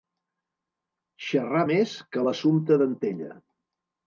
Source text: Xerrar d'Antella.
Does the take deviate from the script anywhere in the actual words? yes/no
yes